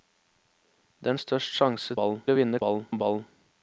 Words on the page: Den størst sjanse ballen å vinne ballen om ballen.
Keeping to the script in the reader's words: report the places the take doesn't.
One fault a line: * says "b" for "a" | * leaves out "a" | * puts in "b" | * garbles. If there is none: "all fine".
all fine